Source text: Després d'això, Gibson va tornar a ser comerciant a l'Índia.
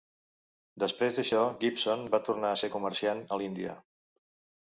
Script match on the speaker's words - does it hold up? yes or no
yes